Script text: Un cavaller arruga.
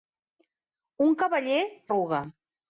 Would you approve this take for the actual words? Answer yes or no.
yes